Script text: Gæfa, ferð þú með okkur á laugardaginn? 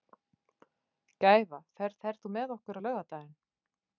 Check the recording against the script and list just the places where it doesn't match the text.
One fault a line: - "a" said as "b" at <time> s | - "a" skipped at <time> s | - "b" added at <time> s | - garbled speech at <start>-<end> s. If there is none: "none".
- "ferð" added at 2.1 s